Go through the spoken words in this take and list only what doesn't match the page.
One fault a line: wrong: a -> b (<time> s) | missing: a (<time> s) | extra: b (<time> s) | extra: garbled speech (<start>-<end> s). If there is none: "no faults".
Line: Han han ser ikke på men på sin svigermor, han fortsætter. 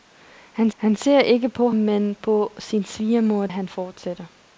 no faults